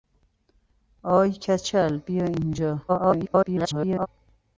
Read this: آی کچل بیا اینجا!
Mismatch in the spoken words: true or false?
true